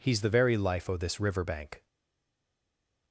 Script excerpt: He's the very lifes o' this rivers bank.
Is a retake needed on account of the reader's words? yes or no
yes